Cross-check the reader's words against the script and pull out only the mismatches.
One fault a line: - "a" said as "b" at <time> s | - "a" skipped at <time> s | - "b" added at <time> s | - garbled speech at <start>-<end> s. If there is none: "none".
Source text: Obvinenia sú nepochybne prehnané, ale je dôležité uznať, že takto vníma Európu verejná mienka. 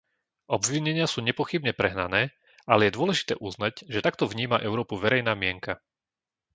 none